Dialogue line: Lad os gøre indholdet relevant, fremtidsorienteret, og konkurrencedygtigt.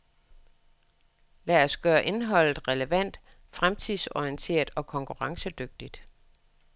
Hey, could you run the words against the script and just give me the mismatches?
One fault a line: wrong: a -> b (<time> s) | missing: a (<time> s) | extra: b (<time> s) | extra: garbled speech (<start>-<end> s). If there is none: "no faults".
no faults